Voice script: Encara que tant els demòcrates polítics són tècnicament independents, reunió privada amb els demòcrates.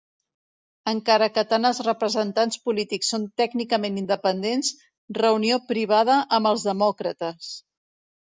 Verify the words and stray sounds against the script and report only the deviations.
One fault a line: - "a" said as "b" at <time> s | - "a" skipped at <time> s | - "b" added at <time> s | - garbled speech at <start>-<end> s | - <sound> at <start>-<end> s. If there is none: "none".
- "demòcrates" said as "representants" at 1.9 s